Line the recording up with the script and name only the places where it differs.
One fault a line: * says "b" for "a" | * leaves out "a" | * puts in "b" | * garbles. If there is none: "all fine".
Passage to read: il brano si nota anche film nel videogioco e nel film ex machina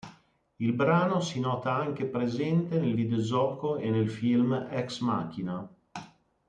* says "presente" for "film"